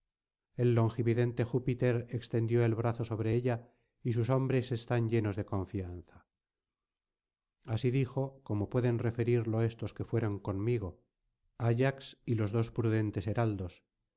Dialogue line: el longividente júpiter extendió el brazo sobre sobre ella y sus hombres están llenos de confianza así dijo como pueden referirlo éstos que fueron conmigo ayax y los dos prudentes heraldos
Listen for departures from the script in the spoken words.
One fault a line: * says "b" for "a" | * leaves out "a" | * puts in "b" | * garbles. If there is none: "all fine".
* leaves out "sobre"